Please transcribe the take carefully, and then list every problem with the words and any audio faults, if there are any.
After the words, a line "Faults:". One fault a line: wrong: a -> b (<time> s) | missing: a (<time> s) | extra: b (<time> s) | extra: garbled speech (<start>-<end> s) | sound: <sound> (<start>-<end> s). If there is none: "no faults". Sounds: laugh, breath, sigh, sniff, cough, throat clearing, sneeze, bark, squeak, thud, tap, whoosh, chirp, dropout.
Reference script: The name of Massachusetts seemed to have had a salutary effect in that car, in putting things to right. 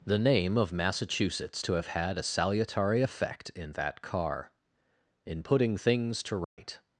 The name of Massachusetts to have had a salutary effect in that car, in putting things to right.
Faults:
missing: seemed (1.6 s)
sound: dropout (6.4-6.6 s)